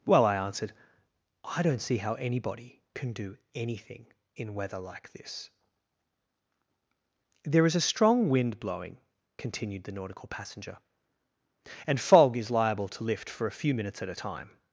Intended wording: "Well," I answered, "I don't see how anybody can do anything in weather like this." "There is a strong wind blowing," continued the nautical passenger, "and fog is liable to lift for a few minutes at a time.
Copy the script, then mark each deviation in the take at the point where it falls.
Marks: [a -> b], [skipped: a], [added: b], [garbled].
"Well," I answered, "I don't see how anybody can do anything in weather like this." "There is a strong wind blowing," continued the nautical passenger, "and fog is liable to lift for a few minutes at a time.